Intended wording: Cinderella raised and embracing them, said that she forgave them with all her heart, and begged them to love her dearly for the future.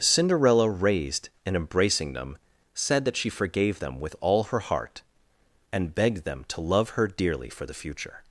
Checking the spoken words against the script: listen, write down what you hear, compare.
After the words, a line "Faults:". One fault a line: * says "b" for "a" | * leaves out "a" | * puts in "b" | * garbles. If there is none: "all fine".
Cinderella raised and embracing them, said that she forgave them with all her heart, and begged them to love her dearly for the future.
Faults:
all fine